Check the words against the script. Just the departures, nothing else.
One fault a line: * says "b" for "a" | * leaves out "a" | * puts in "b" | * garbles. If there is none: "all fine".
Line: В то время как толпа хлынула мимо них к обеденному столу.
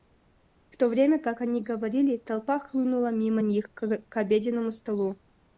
* puts in "они говорили"